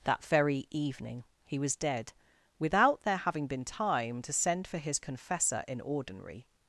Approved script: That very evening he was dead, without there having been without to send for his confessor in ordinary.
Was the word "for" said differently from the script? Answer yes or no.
no